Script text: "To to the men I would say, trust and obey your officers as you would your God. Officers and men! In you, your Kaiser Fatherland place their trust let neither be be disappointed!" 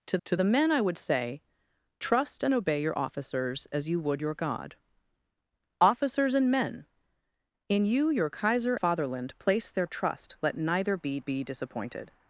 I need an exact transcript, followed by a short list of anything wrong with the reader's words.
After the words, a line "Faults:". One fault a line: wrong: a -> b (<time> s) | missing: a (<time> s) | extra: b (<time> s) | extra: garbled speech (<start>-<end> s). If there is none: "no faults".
"To to the men I would say, trust and obey your officers as you would your God. Officers and men! In you, your Kaiser Fatherland place their trust let neither be be disappointed!"
Faults:
no faults